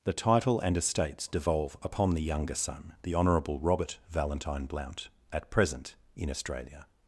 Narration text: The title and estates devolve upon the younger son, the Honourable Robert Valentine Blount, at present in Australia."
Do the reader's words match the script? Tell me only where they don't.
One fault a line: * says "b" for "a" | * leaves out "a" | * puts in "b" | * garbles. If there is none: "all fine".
all fine